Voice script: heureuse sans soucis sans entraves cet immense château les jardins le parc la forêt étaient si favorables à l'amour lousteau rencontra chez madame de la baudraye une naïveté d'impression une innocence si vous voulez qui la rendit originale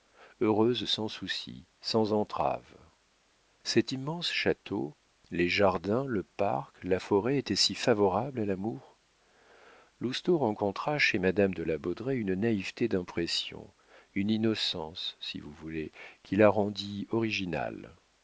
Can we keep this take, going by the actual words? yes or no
yes